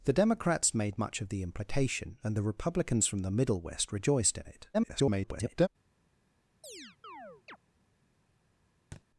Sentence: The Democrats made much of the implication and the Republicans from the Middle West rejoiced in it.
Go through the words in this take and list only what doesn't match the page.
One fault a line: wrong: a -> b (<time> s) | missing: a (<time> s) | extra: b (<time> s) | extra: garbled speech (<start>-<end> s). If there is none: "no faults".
extra: garbled speech (4.7-5.7 s)